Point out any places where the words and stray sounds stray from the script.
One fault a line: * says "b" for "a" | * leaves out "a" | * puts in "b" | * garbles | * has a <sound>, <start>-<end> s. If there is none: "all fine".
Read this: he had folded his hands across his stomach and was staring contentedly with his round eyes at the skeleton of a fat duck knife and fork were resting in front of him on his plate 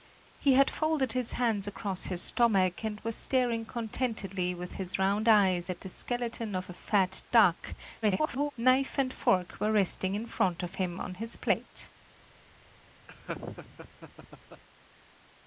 * garbles
* has a laugh, 13.1-14.6 s